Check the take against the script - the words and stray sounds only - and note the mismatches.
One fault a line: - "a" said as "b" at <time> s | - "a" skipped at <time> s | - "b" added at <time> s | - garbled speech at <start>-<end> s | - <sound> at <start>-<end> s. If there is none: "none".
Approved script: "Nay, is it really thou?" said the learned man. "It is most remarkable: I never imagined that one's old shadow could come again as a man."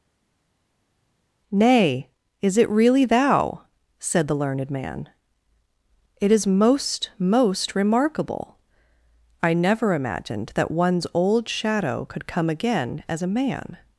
- "most" added at 7.2 s